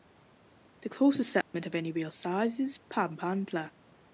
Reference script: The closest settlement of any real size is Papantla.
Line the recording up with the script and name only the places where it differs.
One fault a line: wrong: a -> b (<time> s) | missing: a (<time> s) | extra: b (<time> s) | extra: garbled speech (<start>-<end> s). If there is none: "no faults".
no faults